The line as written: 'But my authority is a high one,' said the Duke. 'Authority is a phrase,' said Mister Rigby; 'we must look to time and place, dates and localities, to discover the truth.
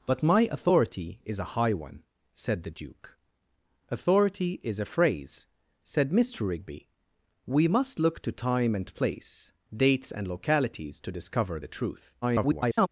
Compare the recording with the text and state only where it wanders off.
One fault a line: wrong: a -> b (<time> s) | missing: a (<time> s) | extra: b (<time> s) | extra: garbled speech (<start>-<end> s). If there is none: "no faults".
extra: garbled speech (12.2-12.9 s)